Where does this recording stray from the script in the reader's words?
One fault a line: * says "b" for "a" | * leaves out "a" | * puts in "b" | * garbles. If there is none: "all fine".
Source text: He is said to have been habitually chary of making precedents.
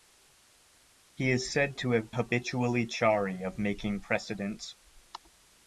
* leaves out "been"